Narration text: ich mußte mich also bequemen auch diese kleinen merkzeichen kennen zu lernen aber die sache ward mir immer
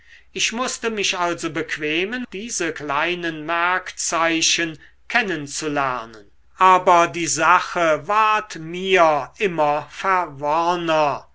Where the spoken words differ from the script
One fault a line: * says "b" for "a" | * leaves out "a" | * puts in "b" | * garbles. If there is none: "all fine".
* leaves out "auch"